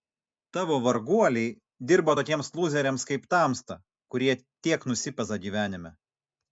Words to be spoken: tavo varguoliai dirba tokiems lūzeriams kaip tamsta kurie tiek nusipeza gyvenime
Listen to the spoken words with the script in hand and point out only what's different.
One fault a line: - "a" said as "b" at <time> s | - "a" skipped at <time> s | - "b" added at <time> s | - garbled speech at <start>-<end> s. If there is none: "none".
none